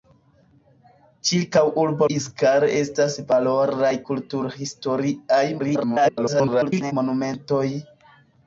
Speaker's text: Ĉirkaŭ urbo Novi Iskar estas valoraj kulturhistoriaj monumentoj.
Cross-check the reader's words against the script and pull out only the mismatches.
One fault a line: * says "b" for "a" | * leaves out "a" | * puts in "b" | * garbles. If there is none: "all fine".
* leaves out "Novi"
* garbles